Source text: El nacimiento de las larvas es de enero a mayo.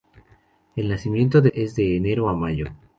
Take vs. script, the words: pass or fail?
fail